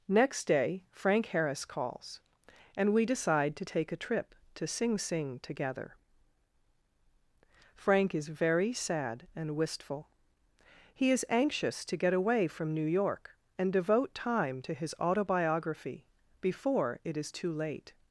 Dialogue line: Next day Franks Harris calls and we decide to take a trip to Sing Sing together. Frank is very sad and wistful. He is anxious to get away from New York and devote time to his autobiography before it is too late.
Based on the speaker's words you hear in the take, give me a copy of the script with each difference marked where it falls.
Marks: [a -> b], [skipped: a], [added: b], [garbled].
Next day [Franks -> Frank] Harris calls and we decide to take a trip to Sing Sing together. Frank is very sad and wistful. He is anxious to get away from New York and devote time to his autobiography before it is too late.